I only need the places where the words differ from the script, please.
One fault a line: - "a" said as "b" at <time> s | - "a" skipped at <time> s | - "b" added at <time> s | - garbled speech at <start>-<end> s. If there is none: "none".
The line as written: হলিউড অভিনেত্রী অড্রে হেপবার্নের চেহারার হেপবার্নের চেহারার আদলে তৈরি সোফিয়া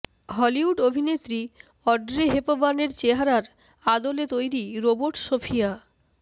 - "হেপবার্নের চেহারার" skipped at 3.4 s
- "রোবট" added at 4.8 s